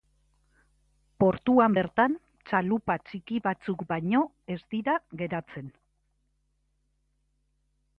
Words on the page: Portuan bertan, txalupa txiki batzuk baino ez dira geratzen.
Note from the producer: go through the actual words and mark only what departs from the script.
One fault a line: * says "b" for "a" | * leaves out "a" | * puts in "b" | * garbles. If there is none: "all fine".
all fine